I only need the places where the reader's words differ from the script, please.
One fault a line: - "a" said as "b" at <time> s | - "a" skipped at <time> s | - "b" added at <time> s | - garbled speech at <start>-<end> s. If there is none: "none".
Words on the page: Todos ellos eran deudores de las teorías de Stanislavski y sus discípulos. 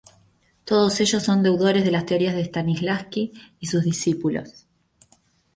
- "eran" said as "son" at 1.2 s